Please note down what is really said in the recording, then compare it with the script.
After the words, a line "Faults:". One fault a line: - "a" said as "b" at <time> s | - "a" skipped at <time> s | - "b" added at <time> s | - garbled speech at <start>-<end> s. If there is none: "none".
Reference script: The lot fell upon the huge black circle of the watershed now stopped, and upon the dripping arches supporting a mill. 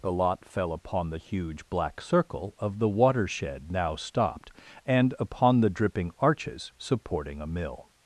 The lot fell upon the huge black circle of the watershed now stopped, and upon the dripping arches supporting a mill.
Faults:
none